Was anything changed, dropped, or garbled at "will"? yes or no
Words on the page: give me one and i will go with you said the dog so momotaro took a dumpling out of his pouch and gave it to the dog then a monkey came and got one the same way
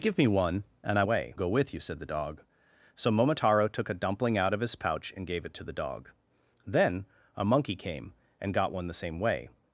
yes